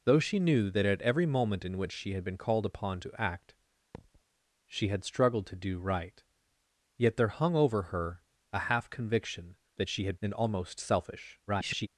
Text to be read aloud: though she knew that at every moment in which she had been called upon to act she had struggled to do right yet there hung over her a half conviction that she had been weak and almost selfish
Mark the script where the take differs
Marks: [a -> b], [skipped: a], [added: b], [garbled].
though she knew that at every moment in which she had been called upon to act she had struggled to do right yet there hung over her a half conviction that she had [skipped: been weak] and almost selfish [garbled]